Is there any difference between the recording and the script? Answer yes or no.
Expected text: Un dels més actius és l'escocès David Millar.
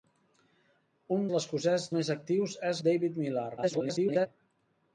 yes